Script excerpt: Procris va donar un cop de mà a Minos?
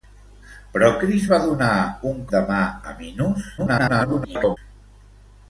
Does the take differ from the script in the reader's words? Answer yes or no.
yes